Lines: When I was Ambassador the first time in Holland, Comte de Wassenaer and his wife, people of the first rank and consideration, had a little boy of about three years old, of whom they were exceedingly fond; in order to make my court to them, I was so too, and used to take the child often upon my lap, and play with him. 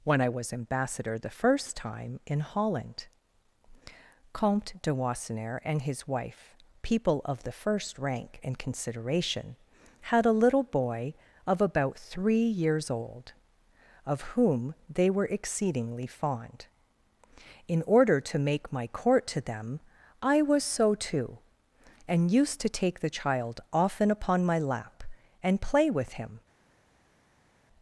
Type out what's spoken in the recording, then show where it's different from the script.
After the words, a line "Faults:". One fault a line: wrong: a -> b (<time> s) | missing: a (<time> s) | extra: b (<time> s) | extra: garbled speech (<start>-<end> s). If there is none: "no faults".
When I was Ambassador the first time in Holland, Comte de Wassenaer and his wife, people of the first rank and consideration, had a little boy of about three years old, of whom they were exceedingly fond; in order to make my court to them, I was so too, and used to take the child often upon my lap, and play with him.
Faults:
no faults